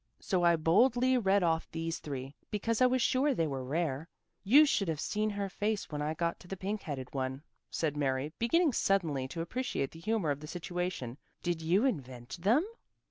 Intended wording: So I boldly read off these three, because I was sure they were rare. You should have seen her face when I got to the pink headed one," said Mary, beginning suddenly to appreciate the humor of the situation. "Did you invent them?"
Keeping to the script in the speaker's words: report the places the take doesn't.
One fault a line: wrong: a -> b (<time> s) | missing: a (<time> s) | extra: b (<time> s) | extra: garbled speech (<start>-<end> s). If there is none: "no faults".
no faults